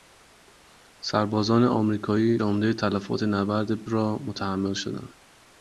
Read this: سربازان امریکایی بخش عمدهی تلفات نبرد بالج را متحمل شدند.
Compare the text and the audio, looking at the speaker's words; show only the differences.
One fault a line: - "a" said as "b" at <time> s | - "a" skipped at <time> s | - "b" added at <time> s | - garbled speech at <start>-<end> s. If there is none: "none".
- "بخش" skipped at 2.4 s
- "بالج" skipped at 3.8 s